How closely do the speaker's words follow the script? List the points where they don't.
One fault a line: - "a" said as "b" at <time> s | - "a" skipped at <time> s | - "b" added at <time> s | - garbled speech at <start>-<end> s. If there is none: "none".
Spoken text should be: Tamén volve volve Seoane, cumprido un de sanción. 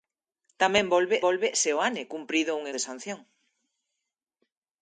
none